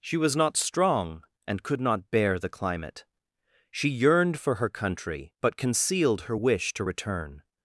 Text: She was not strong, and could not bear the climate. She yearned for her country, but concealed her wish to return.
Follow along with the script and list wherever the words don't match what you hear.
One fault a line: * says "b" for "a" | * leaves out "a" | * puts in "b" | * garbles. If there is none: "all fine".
all fine